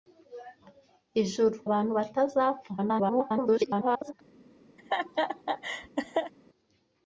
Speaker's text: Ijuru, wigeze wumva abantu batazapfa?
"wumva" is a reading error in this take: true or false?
true